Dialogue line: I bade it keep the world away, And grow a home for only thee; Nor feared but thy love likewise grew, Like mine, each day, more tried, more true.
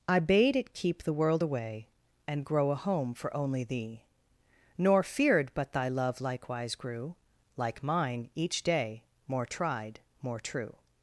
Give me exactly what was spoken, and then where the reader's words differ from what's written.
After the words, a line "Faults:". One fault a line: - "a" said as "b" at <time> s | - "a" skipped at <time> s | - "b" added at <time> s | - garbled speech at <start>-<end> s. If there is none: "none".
I bade it keep the world away, And grow a home for only thee; Nor feared but thy love likewise grew, Like mine, each day, more tried, more true.
Faults:
none